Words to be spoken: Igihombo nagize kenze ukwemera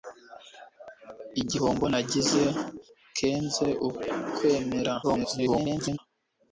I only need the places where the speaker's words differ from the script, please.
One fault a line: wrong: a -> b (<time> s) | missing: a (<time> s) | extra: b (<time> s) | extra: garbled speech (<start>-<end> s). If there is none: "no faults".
extra: garbled speech (5.0-6.0 s)